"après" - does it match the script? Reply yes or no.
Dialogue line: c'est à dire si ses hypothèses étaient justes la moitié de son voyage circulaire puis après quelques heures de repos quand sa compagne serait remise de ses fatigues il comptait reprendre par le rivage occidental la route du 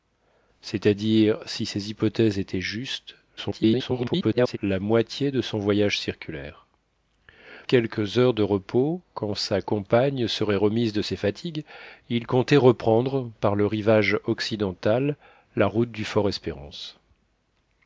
no